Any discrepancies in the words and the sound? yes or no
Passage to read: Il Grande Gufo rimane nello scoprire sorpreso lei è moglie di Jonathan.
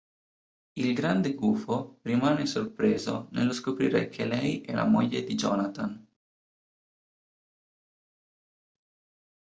yes